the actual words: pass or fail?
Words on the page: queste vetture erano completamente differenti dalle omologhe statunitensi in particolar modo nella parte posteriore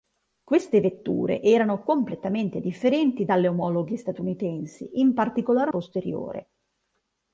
fail